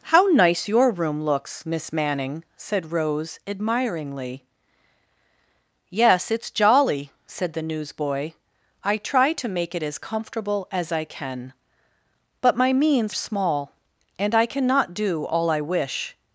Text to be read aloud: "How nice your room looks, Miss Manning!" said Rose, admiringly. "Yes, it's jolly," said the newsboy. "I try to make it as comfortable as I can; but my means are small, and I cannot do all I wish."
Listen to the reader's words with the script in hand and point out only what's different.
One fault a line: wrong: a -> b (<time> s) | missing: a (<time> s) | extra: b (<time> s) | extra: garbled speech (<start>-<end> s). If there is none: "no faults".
missing: are (13.1 s)